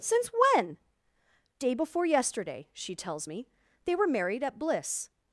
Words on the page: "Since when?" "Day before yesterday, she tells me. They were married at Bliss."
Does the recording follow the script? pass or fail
pass